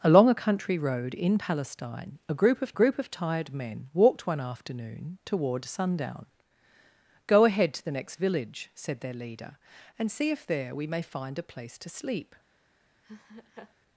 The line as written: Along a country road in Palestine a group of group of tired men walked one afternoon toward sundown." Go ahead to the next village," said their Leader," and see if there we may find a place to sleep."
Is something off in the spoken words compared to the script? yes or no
no